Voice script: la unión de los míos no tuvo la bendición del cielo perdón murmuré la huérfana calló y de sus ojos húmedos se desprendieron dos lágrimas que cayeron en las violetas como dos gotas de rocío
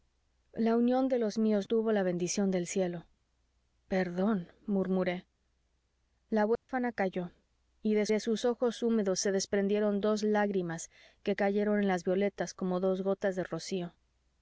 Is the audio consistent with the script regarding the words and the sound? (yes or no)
no